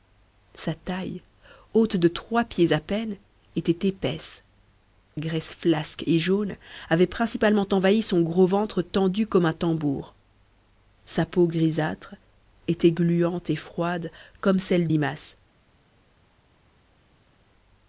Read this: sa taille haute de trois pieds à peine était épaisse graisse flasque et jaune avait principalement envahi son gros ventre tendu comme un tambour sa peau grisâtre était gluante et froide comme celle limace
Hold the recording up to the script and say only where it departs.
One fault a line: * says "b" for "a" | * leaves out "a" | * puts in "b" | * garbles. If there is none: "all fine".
all fine